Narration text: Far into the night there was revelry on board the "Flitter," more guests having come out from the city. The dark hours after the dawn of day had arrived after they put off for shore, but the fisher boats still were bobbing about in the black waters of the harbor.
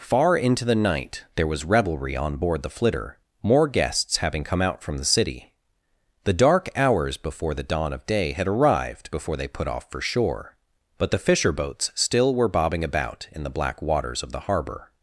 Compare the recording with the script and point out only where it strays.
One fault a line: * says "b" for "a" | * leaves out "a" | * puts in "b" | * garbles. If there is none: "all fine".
* says "before" for "after"
* says "before" for "after"